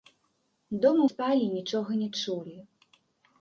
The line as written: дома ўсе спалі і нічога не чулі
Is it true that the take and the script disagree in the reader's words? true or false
true